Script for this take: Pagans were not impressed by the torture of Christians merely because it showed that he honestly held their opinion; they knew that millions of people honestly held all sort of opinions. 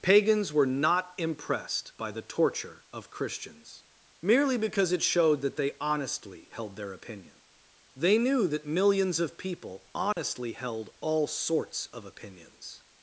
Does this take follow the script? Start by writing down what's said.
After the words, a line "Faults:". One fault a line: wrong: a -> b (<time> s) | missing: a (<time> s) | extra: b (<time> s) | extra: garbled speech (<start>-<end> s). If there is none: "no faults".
Pagans were not impressed by the torture of Christians merely because it showed that they honestly held their opinion; they knew that millions of people honestly held all sorts of opinions.
Faults:
wrong: he -> they (5.5 s)
wrong: sort -> sorts (11.3 s)